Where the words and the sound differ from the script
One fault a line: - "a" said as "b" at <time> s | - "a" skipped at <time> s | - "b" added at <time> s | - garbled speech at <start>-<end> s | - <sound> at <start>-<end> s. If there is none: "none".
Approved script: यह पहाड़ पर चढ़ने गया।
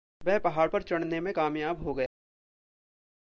- "यह" said as "वह" at 0.2 s
- "में कामयाब हो" added at 1.2 s